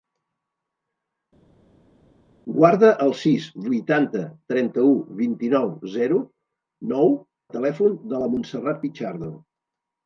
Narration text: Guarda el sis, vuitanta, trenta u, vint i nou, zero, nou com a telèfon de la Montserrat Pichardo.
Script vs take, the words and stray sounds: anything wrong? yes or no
yes